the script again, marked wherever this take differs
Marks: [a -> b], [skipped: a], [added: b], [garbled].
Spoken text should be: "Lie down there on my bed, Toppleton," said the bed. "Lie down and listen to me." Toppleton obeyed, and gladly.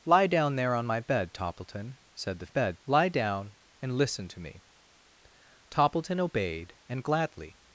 "Lie down there on my bed, Toppleton," said the bed. "Lie down and listen to me." Toppleton obeyed, and gladly.